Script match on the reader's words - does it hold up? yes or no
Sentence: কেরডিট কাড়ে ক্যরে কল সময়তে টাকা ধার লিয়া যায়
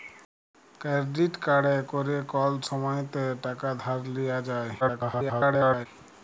no